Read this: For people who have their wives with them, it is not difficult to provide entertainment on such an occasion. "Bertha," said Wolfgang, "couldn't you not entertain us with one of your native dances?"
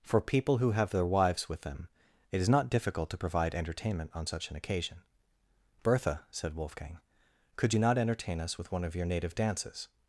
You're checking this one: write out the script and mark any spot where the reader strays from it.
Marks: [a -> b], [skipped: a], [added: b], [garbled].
For people who have their wives with them, it is not difficult to provide entertainment on such an occasion. "Bertha," said Wolfgang, ["couldn't -> could] you not entertain us with one of your native dances?"